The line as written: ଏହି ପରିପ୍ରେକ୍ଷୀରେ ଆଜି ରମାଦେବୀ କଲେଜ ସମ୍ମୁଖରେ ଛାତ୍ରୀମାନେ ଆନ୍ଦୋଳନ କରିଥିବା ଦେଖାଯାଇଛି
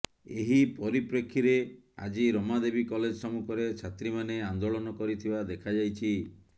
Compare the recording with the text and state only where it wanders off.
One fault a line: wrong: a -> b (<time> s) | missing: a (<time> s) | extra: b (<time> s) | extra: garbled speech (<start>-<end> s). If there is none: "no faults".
no faults